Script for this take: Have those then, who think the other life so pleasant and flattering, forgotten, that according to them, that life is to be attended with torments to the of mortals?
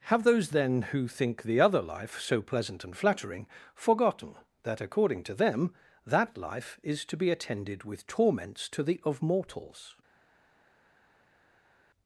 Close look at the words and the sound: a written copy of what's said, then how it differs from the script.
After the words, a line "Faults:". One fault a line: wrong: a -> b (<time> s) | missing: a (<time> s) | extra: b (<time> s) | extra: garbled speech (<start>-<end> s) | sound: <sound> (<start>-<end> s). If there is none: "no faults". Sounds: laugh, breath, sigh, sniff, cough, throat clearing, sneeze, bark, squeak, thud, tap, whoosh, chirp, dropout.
Have those then, who think the other life so pleasant and flattering, forgotten, that according to them, that life is to be attended with torments to the of mortals?
Faults:
no faults